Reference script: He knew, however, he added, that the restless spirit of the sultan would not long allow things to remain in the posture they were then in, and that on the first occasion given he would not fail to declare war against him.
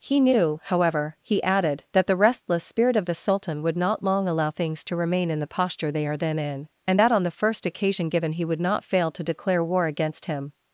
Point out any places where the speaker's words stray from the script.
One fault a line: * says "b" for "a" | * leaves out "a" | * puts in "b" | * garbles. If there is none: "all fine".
* says "are" for "were"